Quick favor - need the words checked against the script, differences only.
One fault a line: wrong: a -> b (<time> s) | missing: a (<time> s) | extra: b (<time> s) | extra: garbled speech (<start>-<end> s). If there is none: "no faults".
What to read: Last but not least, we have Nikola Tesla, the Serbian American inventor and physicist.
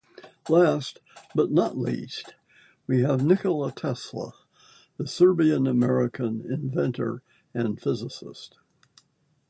no faults